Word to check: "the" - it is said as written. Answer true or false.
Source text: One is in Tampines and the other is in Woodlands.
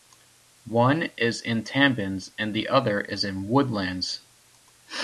true